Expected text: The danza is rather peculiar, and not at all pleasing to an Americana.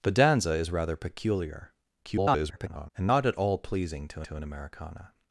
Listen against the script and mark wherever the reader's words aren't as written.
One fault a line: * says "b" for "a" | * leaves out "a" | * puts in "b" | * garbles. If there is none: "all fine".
* garbles
* puts in "to"